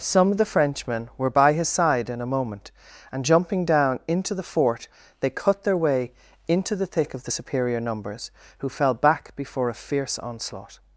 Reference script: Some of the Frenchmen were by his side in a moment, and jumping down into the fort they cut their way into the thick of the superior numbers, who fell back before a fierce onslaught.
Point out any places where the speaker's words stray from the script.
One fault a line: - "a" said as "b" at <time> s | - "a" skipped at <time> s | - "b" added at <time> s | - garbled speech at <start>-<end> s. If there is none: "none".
none